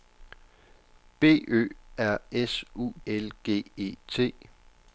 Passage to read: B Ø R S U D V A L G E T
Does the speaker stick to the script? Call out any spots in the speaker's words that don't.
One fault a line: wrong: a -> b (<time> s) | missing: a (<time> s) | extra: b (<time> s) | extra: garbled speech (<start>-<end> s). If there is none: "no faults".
missing: D V A (2.9 s)